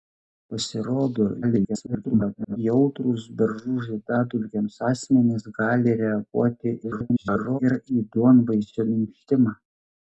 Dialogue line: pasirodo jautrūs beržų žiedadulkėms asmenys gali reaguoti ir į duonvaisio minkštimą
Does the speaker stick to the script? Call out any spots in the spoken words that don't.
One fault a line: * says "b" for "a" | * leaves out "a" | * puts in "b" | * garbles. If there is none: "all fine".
* garbles
* garbles